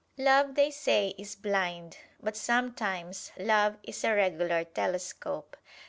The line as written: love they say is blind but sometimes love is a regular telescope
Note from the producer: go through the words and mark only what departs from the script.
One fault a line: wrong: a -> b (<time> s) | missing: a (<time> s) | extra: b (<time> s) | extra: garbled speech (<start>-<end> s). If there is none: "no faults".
no faults